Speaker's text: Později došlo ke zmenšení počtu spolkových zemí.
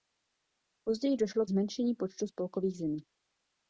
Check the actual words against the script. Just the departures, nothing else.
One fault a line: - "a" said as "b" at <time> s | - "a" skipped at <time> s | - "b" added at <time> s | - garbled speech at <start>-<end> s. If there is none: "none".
- "ke" skipped at 1.4 s